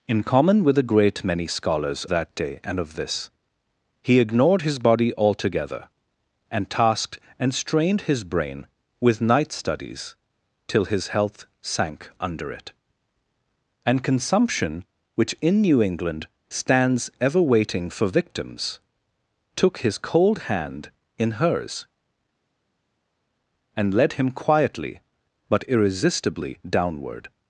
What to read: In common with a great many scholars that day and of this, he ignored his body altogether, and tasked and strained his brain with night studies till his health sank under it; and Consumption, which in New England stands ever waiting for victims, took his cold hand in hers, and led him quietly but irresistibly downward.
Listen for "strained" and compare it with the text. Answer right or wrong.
right